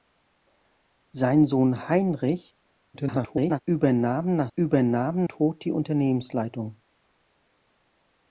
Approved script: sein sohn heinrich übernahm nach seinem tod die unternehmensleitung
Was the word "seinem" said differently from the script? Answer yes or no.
yes